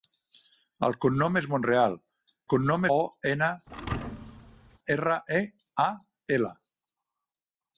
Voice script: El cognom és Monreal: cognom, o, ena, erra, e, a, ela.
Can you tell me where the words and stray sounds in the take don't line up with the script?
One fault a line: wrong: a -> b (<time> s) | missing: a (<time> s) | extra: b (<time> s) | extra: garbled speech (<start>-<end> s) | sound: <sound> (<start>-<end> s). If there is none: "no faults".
sound: thud (3.7-4.8 s)